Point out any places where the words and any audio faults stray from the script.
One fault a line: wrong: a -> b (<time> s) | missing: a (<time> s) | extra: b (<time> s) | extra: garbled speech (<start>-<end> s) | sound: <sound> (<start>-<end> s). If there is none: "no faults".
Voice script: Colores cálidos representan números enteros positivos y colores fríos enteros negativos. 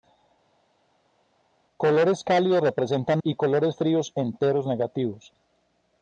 missing: números enteros positivos (3.2 s)